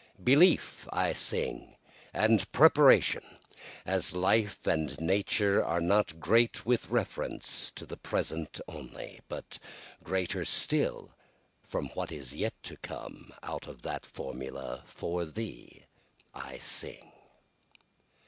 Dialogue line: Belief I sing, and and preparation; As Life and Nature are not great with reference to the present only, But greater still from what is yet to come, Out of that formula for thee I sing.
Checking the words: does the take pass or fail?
fail